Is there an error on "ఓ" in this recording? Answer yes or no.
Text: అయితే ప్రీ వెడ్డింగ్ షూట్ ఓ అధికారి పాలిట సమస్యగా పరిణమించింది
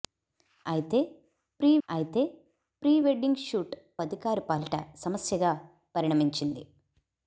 yes